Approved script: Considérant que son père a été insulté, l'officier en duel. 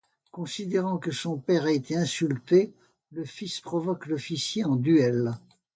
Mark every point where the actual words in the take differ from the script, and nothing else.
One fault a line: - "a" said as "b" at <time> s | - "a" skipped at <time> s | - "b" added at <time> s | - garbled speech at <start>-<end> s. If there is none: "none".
- "le fils provoque" added at 3.1 s